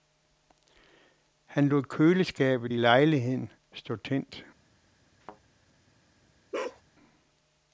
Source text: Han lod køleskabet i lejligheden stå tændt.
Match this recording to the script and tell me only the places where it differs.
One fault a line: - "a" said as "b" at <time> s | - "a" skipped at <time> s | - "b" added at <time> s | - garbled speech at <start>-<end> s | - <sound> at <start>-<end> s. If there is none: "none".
- thud at 5.2-5.4 s
- bark at 6.5-6.8 s